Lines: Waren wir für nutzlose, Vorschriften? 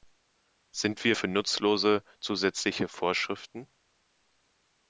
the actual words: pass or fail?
fail